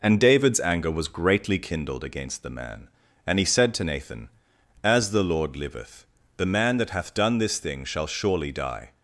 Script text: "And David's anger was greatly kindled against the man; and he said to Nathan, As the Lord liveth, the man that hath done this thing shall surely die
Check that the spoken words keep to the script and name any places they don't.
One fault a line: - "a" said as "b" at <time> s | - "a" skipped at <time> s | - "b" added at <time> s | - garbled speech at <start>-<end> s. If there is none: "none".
none